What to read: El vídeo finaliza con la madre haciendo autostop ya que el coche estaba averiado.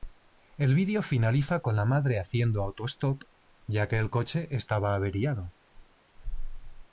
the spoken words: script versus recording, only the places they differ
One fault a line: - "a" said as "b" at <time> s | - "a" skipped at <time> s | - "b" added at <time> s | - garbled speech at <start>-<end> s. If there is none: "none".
none